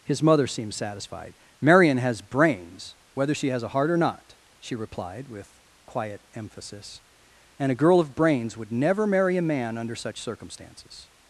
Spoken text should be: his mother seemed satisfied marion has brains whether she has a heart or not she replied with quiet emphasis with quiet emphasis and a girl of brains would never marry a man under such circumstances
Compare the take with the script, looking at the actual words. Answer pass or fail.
fail